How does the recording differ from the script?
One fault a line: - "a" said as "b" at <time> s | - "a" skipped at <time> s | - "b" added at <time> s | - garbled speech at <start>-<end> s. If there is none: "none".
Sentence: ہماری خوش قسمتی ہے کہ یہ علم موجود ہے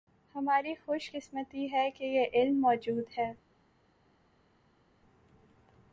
none